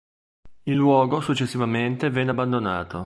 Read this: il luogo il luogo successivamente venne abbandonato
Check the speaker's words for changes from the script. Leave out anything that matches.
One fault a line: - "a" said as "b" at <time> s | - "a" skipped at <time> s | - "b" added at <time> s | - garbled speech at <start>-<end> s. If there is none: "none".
- "il luogo" skipped at 1.2 s